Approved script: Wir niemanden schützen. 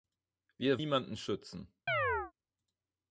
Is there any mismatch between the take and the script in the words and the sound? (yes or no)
yes